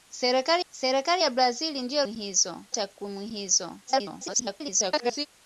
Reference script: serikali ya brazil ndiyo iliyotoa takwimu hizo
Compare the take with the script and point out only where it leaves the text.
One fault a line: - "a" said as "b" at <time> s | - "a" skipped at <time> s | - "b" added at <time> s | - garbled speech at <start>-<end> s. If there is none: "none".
- "serikali" added at 0.7 s
- "iliyotoa" said as "hizo" at 2.0 s
- garbled speech at 3.9-5.3 s